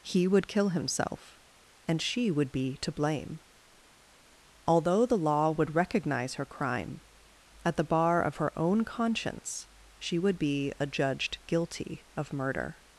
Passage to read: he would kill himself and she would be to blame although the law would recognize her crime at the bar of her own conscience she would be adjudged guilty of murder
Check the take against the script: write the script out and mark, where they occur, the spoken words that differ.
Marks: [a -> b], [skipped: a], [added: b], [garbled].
he would kill himself and she would be to blame although the law would recognize her crime at the bar of her own conscience she would be adjudged guilty of murder